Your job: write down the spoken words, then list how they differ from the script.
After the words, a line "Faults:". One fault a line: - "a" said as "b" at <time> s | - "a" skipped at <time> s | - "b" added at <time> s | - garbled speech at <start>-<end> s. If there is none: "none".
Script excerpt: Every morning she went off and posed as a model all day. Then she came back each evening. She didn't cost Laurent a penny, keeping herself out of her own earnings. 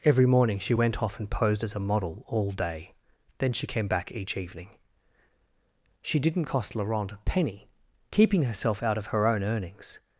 Every morning she went off and posed as a model all day. Then she came back each evening. She didn't cost Laurent a penny, keeping herself out of her own earnings.
Faults:
none